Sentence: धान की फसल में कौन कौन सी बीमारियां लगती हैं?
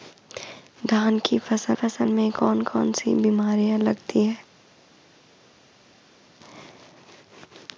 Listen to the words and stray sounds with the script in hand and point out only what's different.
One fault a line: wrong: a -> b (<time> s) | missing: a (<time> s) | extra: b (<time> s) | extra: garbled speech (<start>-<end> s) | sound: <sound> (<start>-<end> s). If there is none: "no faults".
extra: फसल (1.7 s)